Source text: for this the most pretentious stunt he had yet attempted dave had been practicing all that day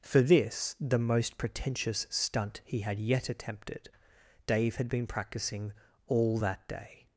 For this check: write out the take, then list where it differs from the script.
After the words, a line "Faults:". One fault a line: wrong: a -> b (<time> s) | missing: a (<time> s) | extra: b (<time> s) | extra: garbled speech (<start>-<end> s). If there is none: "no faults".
for this the most pretentious stunt he had yet attempted dave had been practicing all that day
Faults:
no faults